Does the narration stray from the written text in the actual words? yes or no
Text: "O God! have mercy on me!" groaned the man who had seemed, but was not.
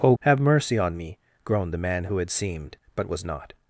yes